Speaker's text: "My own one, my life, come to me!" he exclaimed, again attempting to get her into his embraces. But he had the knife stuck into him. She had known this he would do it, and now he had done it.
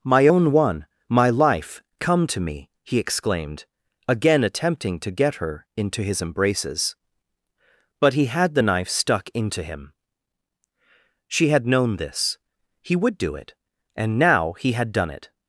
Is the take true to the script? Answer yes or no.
yes